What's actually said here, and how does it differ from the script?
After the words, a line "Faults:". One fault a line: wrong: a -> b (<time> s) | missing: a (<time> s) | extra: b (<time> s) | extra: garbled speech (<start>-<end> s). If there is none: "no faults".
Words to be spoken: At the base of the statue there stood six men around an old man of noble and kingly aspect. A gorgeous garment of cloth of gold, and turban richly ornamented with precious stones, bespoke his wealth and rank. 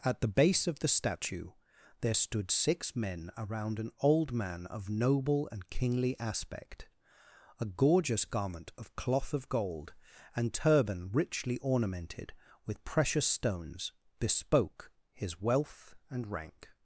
At the base of the statue there stood six men around an old man of noble and kingly aspect. A gorgeous garment of cloth of gold, and turban richly ornamented with precious stones, bespoke his wealth and rank.
Faults:
no faults